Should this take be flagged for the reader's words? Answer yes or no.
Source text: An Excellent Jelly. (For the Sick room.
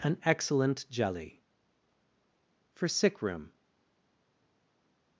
yes